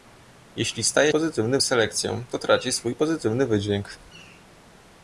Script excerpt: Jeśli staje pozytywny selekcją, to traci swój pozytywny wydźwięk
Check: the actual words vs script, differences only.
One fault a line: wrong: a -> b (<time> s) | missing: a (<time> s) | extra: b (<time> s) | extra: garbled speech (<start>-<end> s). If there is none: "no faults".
no faults